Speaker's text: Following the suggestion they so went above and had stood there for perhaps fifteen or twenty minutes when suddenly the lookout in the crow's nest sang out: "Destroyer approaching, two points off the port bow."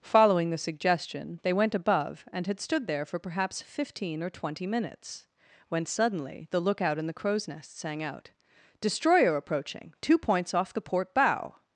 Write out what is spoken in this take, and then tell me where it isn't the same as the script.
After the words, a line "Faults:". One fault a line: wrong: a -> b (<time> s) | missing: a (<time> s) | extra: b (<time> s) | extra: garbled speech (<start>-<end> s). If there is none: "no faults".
Following the suggestion they went above and had stood there for perhaps fifteen or twenty minutes when suddenly the lookout in the crow's nest sang out: "Destroyer approaching, two points off the port bow."
Faults:
missing: so (1.5 s)